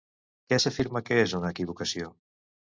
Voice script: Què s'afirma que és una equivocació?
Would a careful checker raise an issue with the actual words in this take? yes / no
no